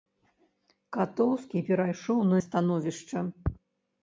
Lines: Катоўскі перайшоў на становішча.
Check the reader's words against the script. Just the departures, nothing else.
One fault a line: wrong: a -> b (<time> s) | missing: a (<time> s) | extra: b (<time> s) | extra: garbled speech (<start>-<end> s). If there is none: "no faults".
no faults